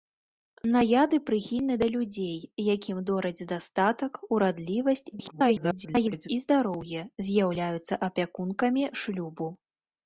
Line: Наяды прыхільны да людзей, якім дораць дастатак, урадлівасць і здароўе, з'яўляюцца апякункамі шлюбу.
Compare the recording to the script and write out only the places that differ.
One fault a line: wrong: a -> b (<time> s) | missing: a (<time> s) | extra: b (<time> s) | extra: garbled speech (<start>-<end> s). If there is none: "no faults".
extra: garbled speech (5.1-6.3 s)